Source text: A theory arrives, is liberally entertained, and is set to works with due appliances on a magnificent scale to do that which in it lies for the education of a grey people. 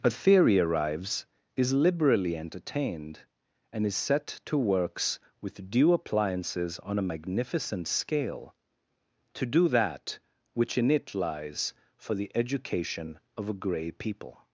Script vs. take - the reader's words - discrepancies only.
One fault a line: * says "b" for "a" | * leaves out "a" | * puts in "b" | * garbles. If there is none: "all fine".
all fine